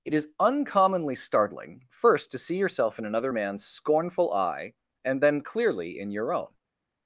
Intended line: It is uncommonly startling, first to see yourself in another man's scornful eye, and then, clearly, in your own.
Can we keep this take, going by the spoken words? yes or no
yes